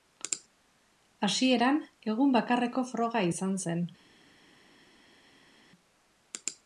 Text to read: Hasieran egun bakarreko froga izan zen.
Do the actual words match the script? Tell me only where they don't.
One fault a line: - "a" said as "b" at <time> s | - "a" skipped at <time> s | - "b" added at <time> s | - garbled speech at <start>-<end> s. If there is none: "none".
none